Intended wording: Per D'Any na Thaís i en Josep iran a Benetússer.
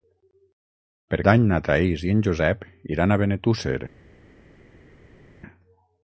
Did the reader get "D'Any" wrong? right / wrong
right